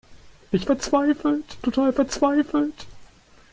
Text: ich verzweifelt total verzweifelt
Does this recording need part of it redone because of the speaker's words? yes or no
no